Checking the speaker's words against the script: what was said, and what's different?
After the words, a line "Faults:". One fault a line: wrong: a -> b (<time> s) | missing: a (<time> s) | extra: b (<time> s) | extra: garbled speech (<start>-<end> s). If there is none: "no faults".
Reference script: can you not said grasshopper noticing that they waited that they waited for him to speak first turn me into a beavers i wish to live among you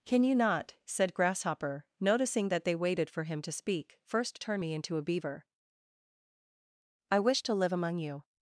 can you not said grasshopper noticing that they waited for him to speak first turn me into a beaver i wish to live among you
Faults:
missing: that they waited (3.1 s)
wrong: beavers -> beaver (5.0 s)